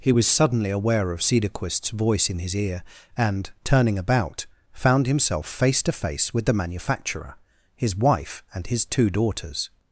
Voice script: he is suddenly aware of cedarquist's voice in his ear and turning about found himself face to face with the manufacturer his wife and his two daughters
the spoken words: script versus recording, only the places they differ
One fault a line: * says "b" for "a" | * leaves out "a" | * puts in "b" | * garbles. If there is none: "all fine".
* says "was" for "is"